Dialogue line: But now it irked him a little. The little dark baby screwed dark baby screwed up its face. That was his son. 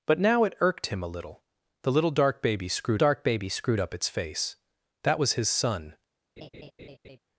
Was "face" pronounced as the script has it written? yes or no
yes